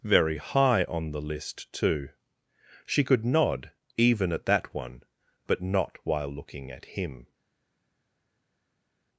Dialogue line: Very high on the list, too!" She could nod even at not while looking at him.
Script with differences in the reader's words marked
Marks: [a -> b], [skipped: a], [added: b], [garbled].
Very high on the list, too!" She could nod even at [added: that one but] not while looking at him.